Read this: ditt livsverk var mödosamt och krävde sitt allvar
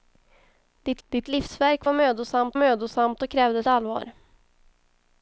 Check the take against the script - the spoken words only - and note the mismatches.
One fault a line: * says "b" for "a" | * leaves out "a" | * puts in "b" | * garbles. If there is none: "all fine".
* puts in "ditt"
* puts in "mödosamt"
* leaves out "sitt"